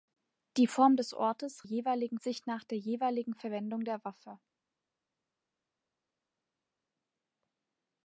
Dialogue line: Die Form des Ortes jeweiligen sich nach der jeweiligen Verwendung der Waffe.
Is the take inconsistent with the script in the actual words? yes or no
no